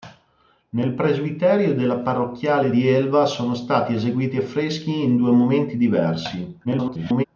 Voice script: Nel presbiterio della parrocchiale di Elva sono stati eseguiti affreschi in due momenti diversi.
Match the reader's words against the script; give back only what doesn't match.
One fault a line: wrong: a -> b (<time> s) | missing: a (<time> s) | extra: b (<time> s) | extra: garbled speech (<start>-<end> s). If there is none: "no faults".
extra: garbled speech (6.6-7.2 s)